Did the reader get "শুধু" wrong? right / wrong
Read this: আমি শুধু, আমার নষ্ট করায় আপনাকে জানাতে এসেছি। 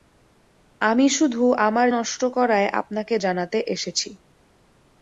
right